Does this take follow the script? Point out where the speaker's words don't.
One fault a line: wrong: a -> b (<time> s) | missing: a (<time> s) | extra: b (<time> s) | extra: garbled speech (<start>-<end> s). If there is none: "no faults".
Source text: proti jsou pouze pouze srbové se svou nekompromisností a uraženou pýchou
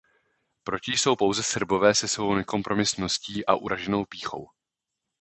missing: pouze (1.4 s)